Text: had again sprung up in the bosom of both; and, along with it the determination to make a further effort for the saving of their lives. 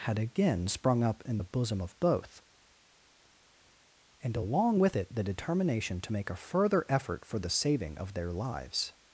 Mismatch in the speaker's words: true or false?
false